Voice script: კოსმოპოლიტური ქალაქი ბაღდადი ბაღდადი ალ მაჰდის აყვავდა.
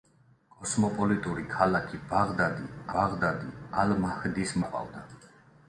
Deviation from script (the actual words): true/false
false